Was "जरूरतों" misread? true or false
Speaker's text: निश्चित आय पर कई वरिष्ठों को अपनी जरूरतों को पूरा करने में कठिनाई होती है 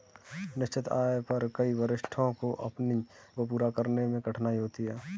true